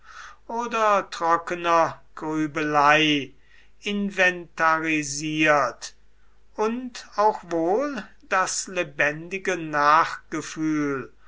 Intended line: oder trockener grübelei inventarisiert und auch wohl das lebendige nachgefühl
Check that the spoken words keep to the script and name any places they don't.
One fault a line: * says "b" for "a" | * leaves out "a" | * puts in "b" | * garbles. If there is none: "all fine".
all fine